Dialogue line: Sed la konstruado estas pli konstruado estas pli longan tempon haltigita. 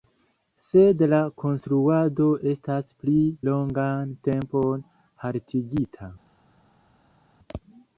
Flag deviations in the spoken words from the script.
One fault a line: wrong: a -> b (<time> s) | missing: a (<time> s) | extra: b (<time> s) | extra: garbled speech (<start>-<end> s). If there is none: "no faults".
missing: konstruado estas pli (3.1 s)